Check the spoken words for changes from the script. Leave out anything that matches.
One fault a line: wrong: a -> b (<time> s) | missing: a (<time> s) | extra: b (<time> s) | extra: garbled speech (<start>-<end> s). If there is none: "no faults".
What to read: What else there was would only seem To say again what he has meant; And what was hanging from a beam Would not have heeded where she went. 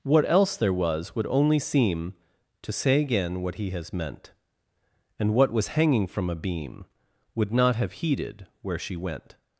no faults